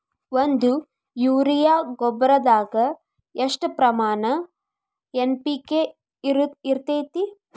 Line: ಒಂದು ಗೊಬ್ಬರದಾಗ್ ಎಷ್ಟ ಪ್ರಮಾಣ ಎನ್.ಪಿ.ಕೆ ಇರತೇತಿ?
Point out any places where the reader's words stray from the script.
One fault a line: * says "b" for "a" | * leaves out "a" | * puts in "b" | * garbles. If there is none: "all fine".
* puts in "ಯೂರಿಯಾ"